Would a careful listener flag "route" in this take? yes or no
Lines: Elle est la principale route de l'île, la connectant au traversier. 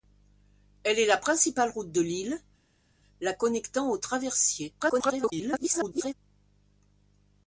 no